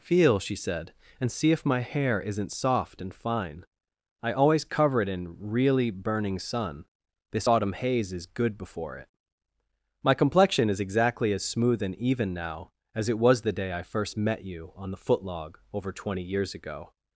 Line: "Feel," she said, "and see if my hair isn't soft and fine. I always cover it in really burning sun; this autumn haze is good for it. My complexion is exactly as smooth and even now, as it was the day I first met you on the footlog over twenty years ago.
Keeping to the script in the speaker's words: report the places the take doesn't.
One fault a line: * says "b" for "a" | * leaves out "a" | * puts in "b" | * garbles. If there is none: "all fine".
* says "before" for "for"